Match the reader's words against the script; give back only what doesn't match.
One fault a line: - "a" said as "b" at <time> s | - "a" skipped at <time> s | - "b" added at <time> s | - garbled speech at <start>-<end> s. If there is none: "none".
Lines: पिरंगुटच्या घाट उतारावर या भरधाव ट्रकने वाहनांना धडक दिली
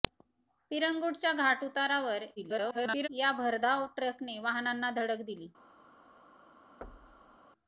- garbled speech at 2.4-3.1 s